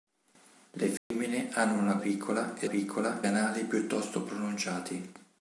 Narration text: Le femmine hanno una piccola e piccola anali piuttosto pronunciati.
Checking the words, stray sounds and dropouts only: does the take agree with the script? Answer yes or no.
no